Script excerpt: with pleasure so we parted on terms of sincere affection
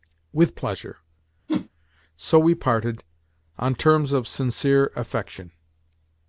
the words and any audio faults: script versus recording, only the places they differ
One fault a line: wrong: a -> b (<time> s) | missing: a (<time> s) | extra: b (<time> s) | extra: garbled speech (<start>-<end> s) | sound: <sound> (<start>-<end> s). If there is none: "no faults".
sound: whoosh (1.5-1.7 s)